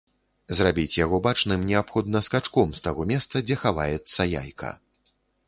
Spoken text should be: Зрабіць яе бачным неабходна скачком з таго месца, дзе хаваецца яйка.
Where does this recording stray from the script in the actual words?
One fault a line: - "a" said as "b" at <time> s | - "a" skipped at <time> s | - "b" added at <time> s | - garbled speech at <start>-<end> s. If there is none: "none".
- "яе" said as "яго" at 1.1 s